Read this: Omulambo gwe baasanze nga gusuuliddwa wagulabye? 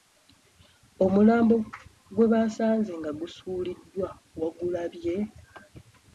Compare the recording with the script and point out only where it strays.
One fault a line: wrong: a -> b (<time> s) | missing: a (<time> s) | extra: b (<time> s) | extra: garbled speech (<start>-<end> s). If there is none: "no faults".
no faults